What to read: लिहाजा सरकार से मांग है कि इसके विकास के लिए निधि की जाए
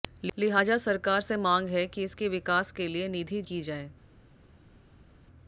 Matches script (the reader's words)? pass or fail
pass